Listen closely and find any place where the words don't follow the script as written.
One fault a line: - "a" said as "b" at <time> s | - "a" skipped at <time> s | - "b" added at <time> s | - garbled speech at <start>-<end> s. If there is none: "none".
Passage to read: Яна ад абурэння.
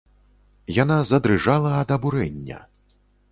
- "задрыжала" added at 1.1 s